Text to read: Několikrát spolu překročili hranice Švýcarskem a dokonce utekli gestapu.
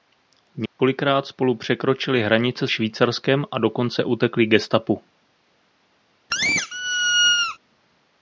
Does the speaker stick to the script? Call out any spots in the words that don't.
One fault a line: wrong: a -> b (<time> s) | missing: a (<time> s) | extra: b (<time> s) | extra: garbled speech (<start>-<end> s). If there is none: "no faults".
no faults